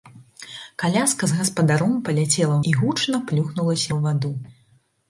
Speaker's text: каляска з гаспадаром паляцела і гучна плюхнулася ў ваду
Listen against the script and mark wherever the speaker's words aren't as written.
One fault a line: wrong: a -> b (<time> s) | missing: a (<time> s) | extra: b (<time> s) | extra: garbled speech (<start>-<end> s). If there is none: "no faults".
no faults